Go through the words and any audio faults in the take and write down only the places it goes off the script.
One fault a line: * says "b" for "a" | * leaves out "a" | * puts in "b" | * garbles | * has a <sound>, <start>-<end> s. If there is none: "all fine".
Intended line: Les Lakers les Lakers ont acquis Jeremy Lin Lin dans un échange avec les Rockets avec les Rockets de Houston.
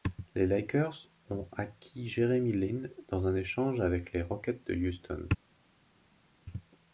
* leaves out "les Lakers"
* leaves out "Lin"
* leaves out "avec les Rockets"